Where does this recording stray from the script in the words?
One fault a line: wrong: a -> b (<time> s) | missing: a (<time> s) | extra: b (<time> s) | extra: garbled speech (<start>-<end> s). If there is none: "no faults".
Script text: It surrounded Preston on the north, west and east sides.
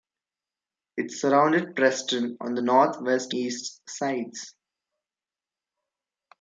missing: and (3.3 s)